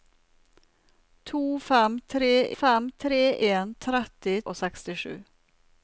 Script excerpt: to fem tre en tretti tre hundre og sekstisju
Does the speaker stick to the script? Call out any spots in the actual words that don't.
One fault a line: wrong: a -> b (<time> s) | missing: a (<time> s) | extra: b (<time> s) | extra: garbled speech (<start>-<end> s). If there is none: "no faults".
extra: fem tre (2.5 s)
missing: tre hundre (4.4 s)